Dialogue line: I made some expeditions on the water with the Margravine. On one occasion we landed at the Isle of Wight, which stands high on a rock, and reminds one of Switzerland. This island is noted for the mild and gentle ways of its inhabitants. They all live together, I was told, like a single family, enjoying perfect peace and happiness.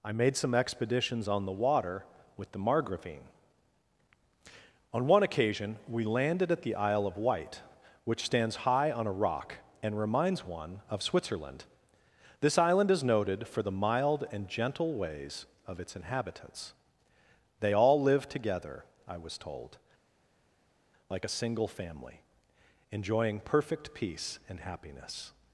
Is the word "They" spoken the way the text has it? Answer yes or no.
yes